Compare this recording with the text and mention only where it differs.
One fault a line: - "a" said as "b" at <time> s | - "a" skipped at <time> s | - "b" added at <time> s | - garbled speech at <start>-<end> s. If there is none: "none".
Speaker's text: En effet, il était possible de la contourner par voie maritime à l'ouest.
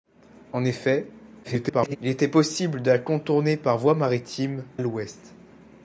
- garbled speech at 1.4-2.0 s
- "à" skipped at 4.6 s